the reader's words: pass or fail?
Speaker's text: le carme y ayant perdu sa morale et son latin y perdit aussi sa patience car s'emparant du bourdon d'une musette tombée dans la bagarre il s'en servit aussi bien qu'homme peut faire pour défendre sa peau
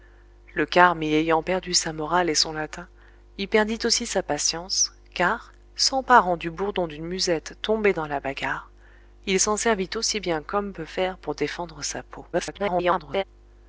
fail